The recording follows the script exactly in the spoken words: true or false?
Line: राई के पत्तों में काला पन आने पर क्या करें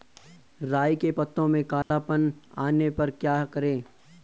true